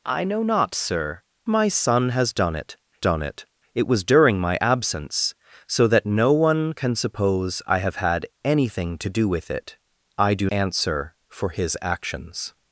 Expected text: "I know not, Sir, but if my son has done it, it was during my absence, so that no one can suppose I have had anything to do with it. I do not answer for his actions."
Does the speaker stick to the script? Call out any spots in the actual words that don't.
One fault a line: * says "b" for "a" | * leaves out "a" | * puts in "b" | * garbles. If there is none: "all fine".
* leaves out "but if"
* puts in "done"
* puts in "it"
* leaves out "not"